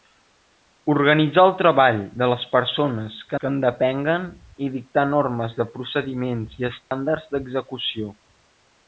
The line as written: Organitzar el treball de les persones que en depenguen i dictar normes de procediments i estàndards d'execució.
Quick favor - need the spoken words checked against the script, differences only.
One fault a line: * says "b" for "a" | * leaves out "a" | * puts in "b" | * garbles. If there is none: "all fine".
* puts in "que"